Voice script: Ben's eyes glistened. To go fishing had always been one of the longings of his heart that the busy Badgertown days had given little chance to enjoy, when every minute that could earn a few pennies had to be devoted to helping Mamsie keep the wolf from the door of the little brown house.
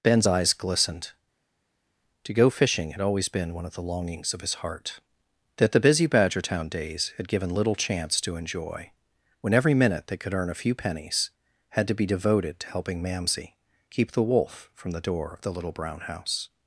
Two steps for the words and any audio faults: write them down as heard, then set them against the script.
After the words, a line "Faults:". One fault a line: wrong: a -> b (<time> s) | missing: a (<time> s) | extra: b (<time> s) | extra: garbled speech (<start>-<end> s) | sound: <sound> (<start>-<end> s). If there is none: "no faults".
Ben's eyes glistened. To go fishing had always been one of the longings of his heart that the busy Badgertown days had given little chance to enjoy, when every minute they could earn a few pennies had to be devoted to helping Mamsie keep the wolf from the door of the little brown house.
Faults:
wrong: that -> they (10.1 s)